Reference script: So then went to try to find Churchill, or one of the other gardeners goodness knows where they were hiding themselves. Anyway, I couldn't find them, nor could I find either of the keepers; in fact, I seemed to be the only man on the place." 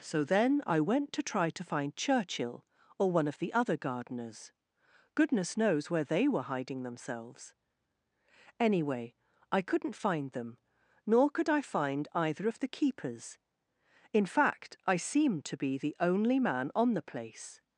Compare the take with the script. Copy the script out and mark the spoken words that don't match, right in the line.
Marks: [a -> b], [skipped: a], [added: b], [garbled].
So then [added: I] went to try to find Churchill, or one of the other gardeners goodness knows where they were hiding themselves. Anyway, I couldn't find them, nor could I find either of the keepers; in fact, I seemed to be the only man on the place."